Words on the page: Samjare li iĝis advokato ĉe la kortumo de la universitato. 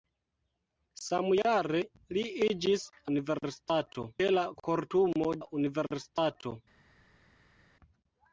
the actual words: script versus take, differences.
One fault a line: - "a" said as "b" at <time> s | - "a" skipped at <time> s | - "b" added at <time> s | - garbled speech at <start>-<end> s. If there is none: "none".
- "advokato" said as "universitato" at 3.2 s
- "de" skipped at 5.3 s